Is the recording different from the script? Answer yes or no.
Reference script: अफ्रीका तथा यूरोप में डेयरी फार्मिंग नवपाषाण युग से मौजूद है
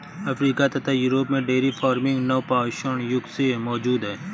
no